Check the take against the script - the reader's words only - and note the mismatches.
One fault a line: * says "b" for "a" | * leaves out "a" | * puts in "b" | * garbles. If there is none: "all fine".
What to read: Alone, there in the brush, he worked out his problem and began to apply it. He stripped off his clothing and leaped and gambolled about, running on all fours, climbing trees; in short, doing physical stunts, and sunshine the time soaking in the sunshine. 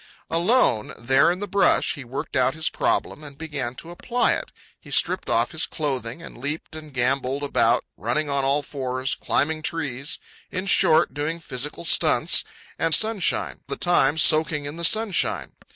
all fine